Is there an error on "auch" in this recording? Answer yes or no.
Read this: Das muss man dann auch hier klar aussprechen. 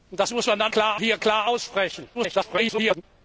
yes